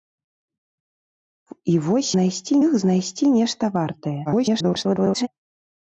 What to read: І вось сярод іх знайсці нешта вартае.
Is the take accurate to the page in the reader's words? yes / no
no